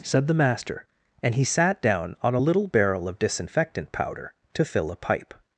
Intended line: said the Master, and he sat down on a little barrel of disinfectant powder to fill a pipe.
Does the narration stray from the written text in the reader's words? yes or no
no